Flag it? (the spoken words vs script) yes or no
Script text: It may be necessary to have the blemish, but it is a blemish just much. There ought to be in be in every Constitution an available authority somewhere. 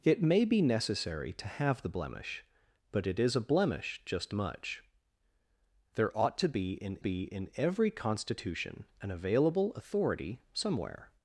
no